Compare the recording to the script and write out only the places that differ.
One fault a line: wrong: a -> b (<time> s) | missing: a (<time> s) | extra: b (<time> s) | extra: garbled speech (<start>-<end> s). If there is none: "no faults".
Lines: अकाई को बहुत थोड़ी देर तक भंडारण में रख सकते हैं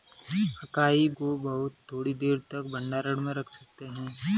no faults